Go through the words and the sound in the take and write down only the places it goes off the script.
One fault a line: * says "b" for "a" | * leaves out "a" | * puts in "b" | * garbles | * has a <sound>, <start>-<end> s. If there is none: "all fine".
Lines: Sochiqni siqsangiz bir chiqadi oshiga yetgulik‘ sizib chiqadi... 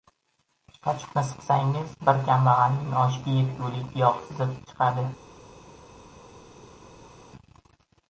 * says "kambag‘alning" for "chiqadi"
* puts in "yog"